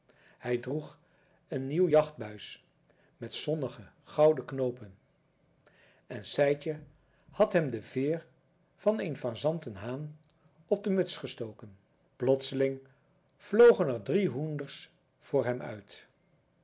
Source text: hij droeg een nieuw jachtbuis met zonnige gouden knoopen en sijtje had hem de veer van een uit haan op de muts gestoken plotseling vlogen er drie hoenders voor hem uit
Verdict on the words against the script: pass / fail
fail